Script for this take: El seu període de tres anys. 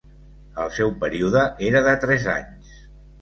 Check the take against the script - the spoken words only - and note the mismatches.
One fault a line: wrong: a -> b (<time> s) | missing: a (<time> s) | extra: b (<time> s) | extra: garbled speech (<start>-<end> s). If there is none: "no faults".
extra: era (1.7 s)